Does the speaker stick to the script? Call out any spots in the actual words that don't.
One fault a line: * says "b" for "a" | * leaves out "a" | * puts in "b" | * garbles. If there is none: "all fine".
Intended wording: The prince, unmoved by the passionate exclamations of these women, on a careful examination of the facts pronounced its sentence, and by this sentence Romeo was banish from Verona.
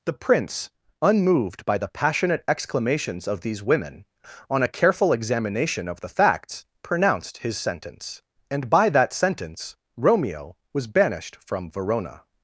* says "his" for "its"
* says "that" for "this"
* says "banished" for "banish"